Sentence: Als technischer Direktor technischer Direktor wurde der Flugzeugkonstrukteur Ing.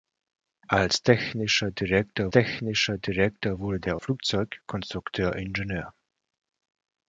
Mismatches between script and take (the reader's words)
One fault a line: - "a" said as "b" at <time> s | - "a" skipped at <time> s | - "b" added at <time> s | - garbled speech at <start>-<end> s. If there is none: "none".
none